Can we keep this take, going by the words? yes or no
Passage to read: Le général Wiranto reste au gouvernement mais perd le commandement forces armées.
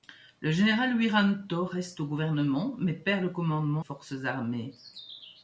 yes